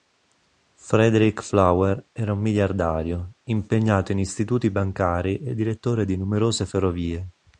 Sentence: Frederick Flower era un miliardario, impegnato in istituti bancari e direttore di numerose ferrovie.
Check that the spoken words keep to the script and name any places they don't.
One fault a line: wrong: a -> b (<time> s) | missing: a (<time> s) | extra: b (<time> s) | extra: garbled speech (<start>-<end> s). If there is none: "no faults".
no faults